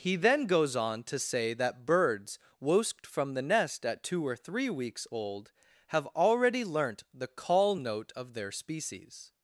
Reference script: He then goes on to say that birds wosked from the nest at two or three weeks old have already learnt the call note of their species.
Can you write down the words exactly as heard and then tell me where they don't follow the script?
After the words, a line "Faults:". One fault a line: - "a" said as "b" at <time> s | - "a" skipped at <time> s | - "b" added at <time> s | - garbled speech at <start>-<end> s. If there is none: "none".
He then goes on to say that birds wosked from the nest at two or three weeks old have already learnt the call note of their species.
Faults:
none